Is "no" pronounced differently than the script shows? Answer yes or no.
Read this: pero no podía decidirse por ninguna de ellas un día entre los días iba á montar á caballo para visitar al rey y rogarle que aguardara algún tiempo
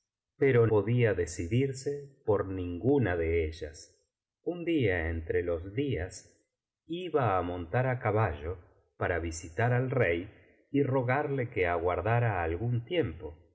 yes